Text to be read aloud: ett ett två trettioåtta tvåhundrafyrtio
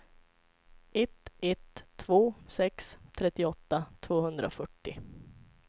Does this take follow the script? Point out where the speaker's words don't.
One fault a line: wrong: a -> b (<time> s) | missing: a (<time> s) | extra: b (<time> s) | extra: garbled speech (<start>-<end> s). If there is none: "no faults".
extra: sex (2.5 s)